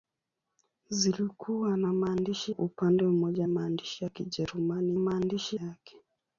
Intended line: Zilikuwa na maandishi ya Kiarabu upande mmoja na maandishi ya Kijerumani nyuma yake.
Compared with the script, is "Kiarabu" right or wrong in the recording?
wrong